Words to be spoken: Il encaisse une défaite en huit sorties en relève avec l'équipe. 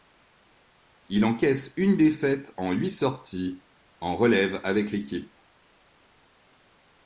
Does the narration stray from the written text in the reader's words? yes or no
no